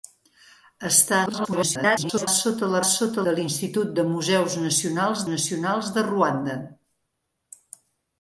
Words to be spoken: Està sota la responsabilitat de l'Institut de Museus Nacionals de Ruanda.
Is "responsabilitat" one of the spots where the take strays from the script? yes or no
yes